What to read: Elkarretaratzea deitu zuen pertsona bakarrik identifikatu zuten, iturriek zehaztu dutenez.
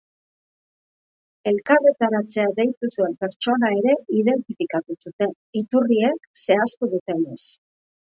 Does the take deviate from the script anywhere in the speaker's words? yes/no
yes